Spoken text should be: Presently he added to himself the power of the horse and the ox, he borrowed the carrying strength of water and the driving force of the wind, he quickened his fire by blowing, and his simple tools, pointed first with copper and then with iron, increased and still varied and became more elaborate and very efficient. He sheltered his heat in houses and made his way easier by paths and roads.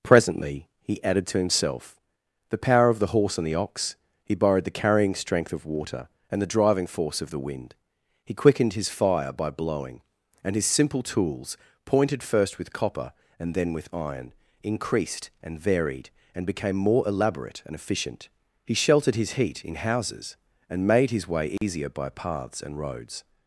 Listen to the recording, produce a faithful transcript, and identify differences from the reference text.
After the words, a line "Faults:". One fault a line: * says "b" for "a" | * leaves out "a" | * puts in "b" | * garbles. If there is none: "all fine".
Presently he added to himself the power of the horse and the ox, he borrowed the carrying strength of water and the driving force of the wind, he quickened his fire by blowing, and his simple tools, pointed first with copper and then with iron, increased and varied and became more elaborate and efficient. He sheltered his heat in houses and made his way easier by paths and roads.
Faults:
* leaves out "still"
* leaves out "very"